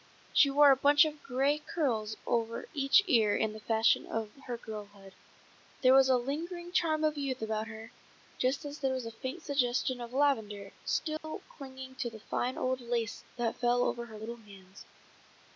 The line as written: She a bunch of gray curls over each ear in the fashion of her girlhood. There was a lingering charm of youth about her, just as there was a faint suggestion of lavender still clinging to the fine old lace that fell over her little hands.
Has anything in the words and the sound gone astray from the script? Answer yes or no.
yes